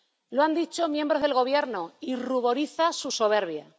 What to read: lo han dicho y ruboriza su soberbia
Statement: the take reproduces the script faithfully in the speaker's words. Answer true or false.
false